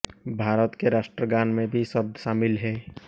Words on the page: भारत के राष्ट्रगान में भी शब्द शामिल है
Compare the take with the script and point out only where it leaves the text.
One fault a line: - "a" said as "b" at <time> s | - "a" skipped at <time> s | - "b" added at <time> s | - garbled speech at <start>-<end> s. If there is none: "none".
none